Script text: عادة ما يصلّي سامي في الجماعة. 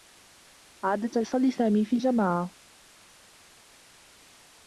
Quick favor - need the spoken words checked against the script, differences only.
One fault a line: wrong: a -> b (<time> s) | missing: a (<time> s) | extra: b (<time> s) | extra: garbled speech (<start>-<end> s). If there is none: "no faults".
missing: ما (1.2 s)